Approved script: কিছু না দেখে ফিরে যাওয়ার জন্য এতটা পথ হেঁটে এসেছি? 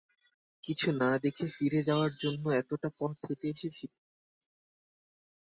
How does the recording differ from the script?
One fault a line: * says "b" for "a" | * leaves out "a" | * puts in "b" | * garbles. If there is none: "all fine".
all fine